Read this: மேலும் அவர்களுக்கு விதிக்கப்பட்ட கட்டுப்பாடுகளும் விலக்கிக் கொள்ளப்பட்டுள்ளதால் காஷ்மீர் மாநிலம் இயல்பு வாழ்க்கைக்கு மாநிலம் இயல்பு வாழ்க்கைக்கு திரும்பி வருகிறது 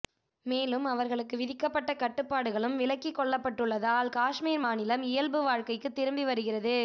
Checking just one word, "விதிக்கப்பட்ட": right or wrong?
right